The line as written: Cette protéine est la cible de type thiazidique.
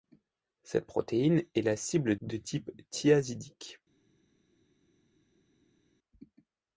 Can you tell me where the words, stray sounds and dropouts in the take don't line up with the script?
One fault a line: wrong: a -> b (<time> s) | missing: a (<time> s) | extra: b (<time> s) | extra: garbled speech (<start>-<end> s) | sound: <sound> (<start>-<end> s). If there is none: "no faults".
no faults